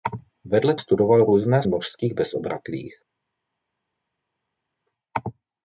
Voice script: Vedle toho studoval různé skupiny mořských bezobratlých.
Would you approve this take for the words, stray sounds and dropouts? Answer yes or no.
no